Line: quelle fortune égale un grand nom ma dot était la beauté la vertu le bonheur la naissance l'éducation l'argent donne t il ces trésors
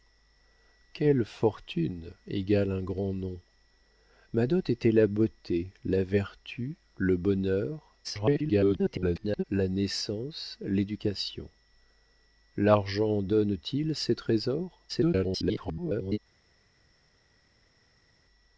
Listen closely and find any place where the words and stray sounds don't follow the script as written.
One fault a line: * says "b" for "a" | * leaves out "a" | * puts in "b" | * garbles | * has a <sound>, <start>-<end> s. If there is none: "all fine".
* garbles
* garbles